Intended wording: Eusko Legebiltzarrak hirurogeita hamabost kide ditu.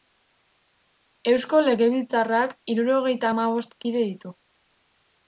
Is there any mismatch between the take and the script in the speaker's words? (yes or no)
no